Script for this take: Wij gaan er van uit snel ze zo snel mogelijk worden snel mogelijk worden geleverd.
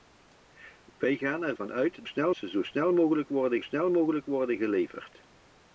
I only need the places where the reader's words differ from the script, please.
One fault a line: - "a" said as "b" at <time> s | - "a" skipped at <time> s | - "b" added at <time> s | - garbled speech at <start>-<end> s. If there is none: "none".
none